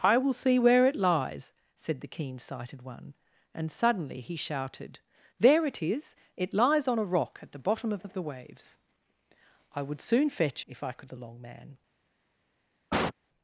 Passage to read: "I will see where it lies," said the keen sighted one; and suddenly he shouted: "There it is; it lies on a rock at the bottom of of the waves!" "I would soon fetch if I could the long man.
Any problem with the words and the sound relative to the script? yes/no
yes